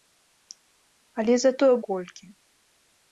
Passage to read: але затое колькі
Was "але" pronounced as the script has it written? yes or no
yes